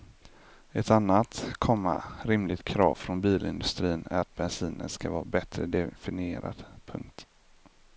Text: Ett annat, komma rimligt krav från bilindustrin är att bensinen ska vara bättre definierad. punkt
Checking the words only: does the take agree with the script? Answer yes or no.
yes